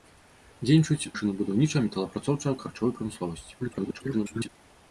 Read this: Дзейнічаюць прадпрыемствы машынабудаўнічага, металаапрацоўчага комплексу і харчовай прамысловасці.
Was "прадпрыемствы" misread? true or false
true